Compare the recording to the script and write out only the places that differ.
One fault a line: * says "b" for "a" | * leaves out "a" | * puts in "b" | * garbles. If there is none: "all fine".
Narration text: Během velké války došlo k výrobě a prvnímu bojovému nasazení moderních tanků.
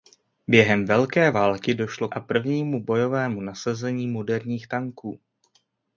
* leaves out "k výrobě"